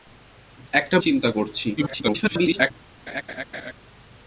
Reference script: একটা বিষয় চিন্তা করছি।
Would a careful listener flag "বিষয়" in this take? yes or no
yes